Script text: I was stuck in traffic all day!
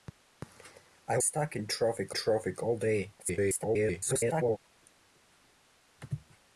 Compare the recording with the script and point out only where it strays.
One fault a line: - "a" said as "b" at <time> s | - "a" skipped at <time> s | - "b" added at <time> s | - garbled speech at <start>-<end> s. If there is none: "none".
- "was" skipped at 1.2 s
- "traffic" added at 2.1 s
- garbled speech at 3.2-4.6 s